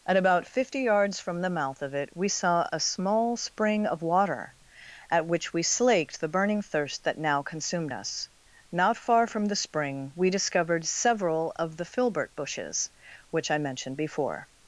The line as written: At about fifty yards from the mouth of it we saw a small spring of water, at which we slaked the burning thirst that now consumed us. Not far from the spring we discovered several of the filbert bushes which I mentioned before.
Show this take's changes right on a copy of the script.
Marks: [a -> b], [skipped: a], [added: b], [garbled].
At about fifty yards from the mouth of it we saw a small spring of water, at which we slaked the burning thirst that now consumed us. Not far from the spring we discovered several of the filbert bushes which I mentioned before.